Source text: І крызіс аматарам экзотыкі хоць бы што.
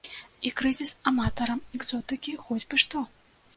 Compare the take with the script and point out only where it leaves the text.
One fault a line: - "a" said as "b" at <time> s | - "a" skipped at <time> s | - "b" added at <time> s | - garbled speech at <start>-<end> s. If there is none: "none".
none